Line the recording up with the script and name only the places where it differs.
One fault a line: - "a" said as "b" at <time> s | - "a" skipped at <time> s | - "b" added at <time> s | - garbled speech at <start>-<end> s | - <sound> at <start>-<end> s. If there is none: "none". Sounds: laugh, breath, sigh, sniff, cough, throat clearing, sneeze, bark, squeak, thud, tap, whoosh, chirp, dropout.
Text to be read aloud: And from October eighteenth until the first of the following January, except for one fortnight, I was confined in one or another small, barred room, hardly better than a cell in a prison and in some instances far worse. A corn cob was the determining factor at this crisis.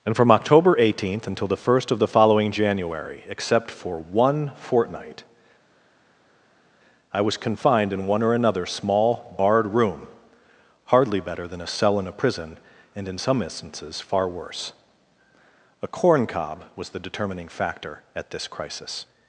none